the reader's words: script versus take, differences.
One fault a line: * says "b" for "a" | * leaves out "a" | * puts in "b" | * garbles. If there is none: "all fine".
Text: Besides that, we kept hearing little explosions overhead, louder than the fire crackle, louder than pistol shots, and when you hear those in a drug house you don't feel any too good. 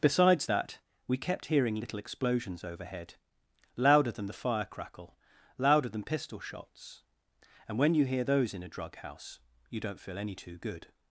all fine